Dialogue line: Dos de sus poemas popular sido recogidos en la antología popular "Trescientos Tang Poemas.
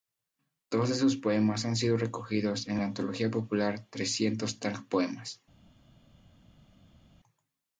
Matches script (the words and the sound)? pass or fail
fail